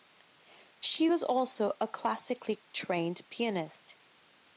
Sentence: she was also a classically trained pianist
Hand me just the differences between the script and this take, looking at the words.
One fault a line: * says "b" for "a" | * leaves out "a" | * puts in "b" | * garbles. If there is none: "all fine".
all fine